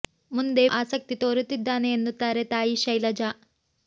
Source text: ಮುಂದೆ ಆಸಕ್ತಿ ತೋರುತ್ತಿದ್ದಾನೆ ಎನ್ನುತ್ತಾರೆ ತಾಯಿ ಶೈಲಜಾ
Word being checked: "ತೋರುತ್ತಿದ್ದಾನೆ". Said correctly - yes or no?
yes